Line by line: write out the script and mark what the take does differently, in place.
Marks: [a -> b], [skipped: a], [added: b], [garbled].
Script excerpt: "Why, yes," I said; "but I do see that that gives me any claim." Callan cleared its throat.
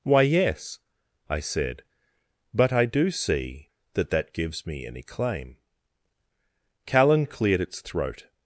"Why, yes," I said; "but I do see that that gives me any claim." Callan cleared its throat.